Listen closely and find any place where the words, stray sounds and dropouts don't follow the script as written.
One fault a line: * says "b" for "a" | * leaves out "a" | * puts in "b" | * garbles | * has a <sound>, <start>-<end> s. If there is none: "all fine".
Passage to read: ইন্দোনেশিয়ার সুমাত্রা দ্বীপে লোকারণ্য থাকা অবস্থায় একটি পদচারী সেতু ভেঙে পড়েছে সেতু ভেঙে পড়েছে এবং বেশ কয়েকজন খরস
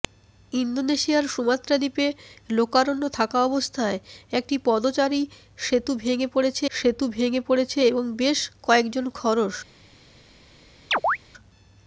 * has a chirp, 10.9-11.2 s